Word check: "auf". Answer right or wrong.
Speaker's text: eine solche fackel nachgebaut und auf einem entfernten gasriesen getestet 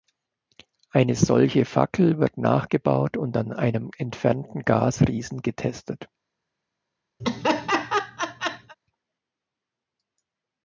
wrong